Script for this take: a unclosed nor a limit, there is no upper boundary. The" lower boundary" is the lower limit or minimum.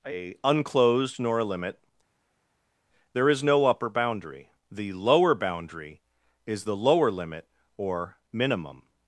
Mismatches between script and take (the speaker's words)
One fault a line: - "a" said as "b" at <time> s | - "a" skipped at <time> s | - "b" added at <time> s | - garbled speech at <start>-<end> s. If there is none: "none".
none